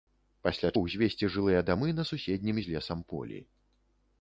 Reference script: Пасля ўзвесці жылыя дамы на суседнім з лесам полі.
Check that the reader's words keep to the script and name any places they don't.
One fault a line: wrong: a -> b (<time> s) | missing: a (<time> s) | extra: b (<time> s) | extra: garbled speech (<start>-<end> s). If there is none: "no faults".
no faults